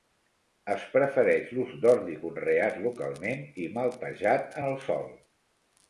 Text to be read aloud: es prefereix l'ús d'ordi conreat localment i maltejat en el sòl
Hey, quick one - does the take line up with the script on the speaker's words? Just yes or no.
yes